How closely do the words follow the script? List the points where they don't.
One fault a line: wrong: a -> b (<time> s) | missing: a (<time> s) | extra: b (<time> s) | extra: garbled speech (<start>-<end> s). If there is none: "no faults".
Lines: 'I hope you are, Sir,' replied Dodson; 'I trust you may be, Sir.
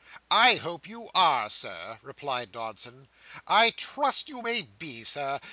no faults